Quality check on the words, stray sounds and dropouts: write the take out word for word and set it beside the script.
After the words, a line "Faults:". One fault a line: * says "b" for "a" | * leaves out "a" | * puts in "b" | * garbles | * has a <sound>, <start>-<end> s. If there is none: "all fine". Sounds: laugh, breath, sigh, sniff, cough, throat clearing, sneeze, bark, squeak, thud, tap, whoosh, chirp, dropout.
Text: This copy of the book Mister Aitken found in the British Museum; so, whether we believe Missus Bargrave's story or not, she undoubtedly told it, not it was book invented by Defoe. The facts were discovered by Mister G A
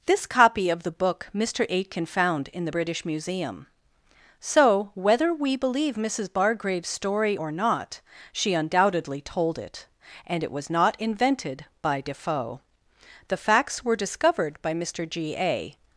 This copy of the book Mister Aitken found in the British Museum; so, whether we believe Missus Bargrave's story or not, she undoubtedly told it, and it was not invented by Defoe. The facts were discovered by Mister G A
Faults:
* says "and" for "not"
* says "not" for "book"